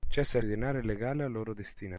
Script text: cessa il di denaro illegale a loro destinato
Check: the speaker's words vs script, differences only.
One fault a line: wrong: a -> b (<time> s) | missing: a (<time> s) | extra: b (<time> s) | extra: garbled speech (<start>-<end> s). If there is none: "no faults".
no faults